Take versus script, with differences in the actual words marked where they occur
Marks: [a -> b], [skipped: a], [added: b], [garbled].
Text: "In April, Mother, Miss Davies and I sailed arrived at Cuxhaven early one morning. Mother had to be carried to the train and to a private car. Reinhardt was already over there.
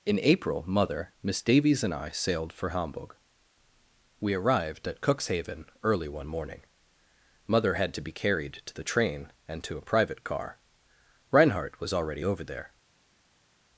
"In April, Mother, Miss Davies and I sailed [added: for Hamburg We] arrived at Cuxhaven early one morning. Mother had to be carried to the train and to a private car. Reinhardt was already over there.